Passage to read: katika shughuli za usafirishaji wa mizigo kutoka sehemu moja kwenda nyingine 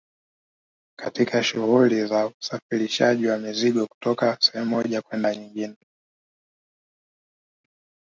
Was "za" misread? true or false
false